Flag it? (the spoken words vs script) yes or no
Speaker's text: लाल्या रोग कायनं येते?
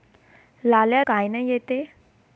yes